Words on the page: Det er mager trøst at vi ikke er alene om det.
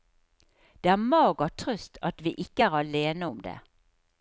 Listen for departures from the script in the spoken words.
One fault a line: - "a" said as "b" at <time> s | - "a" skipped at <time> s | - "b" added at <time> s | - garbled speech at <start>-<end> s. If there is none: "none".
none